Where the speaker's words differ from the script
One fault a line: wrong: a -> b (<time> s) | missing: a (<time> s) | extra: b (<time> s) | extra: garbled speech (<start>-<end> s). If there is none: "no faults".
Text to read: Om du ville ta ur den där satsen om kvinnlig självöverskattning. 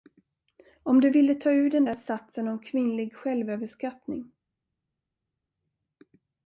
no faults